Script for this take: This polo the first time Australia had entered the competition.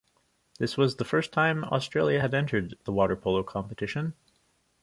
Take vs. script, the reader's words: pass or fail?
fail